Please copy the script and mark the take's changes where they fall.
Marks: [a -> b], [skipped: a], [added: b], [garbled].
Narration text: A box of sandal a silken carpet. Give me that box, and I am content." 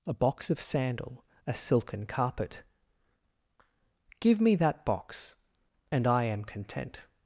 A box of sandal a silken carpet. Give me that box, and I am content."